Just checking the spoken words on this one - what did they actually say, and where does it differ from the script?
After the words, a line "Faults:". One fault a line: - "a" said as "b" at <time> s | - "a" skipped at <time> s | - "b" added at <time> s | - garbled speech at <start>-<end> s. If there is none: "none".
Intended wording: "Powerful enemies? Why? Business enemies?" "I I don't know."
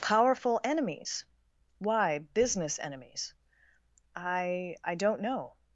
"Powerful enemies? Why? Business enemies?" "I I don't know."
Faults:
none